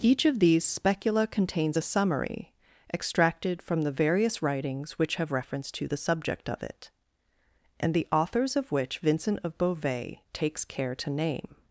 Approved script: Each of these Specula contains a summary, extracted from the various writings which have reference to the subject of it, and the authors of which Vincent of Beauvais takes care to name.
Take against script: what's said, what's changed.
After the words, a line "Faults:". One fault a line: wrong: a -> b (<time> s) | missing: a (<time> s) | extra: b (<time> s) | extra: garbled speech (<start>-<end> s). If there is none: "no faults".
Each of these Specula contains a summary, extracted from the various writings which have reference to the subject of it, and the authors of which Vincent of Beauvais takes care to name.
Faults:
no faults